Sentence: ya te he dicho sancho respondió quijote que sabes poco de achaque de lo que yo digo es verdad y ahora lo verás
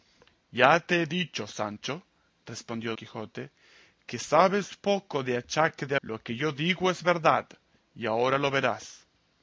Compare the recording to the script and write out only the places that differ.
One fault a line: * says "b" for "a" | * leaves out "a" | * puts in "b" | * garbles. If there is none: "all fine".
all fine